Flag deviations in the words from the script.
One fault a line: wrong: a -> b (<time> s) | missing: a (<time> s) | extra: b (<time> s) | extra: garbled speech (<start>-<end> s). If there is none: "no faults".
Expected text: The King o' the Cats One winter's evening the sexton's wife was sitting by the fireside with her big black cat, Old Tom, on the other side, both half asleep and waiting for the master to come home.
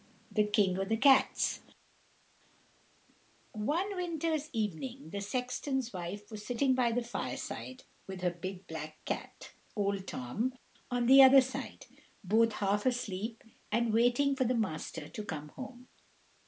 no faults